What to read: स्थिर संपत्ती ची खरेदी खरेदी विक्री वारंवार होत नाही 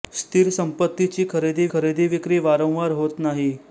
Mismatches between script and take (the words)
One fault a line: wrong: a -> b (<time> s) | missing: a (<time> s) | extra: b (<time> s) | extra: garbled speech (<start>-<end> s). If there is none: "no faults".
no faults